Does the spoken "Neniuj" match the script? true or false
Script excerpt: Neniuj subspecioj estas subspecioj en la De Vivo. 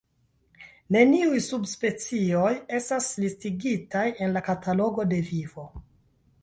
true